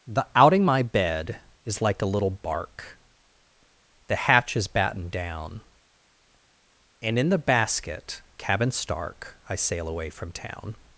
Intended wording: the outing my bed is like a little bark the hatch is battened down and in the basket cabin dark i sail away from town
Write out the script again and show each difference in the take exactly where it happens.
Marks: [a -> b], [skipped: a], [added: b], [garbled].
the outing my bed is like a little bark the hatch is battened down and in the basket cabin [dark -> stark] i sail away from town